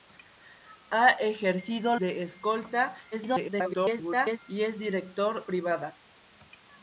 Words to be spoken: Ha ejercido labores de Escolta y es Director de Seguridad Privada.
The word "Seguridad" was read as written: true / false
false